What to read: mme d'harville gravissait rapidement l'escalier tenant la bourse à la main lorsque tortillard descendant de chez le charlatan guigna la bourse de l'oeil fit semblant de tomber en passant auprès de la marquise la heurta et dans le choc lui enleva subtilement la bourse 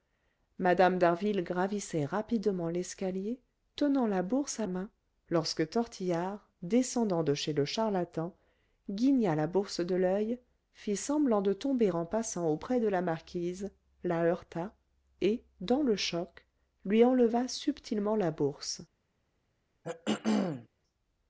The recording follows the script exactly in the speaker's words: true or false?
false